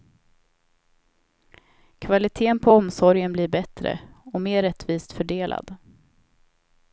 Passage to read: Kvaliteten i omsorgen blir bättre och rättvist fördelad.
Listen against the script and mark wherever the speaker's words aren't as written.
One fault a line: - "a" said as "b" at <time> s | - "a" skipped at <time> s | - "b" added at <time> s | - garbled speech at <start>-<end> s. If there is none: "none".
- "i" said as "på" at 2.6 s
- "mer" added at 4.4 s